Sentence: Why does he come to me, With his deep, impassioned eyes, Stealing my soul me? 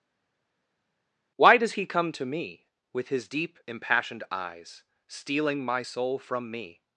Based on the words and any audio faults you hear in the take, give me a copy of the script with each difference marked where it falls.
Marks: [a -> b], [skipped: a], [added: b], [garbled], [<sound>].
Why does he come to me, With his deep, impassioned eyes, Stealing my soul [added: from] me?